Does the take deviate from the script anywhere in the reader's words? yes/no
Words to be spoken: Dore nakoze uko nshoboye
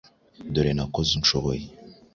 yes